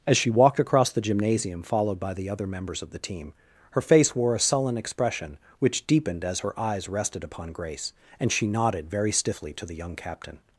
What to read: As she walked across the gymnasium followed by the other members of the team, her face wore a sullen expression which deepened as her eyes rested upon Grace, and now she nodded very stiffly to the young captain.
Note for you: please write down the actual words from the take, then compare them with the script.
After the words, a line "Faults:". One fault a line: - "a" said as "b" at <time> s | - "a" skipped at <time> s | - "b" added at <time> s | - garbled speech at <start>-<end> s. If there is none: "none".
As she walked across the gymnasium followed by the other members of the team, her face wore a sullen expression which deepened as her eyes rested upon Grace, and she nodded very stiffly to the young captain.
Faults:
- "now" skipped at 8.3 s